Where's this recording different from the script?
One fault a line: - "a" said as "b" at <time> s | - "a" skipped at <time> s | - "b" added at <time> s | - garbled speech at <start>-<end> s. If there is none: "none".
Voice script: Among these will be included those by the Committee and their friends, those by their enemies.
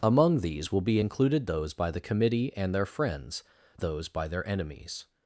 none